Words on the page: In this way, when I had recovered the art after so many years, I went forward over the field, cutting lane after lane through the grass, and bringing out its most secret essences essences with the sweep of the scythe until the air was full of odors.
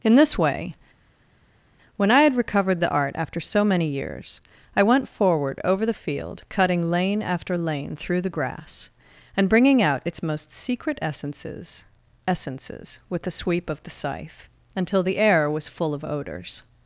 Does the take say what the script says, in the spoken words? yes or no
yes